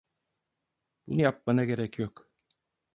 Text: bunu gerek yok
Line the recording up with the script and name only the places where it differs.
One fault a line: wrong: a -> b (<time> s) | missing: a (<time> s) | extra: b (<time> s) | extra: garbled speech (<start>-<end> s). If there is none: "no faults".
extra: yapmana (1.2 s)